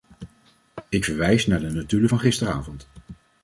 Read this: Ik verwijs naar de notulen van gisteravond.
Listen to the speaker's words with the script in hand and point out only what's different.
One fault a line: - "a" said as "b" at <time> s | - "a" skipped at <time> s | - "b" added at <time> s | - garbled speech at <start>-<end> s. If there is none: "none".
none